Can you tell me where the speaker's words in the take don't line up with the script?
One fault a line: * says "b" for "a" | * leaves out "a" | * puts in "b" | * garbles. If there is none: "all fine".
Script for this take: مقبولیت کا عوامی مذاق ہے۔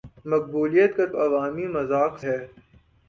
all fine